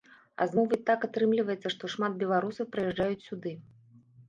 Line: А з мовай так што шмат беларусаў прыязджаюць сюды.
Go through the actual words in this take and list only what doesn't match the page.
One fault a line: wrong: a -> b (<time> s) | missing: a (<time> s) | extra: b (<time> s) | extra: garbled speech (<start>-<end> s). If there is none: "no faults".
extra: атрымліваецца (1.1 s)